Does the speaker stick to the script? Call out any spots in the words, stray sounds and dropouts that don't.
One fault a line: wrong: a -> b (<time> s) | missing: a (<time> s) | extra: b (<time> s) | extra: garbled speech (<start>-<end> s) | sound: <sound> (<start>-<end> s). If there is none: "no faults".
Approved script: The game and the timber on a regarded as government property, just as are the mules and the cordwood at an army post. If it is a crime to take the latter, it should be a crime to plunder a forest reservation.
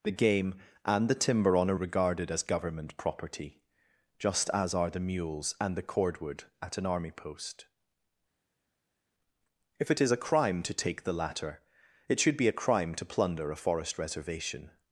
no faults